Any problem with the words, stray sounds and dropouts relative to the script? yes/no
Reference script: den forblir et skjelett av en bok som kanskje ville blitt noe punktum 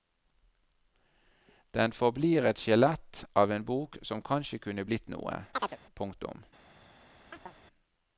yes